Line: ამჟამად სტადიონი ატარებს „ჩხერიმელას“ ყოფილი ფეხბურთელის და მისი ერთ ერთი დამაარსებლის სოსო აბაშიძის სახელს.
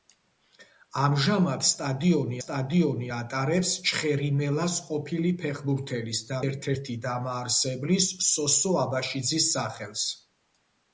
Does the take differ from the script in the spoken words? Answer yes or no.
yes